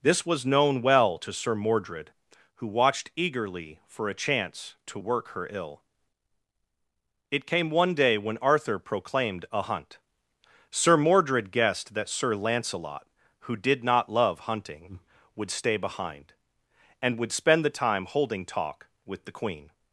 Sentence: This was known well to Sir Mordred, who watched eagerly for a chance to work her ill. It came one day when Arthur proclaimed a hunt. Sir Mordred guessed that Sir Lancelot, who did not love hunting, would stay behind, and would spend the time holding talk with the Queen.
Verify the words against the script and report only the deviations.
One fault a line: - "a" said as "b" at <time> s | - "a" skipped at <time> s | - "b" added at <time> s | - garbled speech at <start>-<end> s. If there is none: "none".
none